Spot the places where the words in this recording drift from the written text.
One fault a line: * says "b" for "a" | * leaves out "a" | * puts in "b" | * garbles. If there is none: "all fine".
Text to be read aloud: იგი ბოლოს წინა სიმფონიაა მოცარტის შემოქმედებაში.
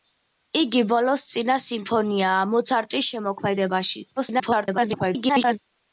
* garbles